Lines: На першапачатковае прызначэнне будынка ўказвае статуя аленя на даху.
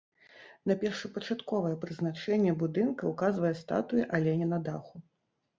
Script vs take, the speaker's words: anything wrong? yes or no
no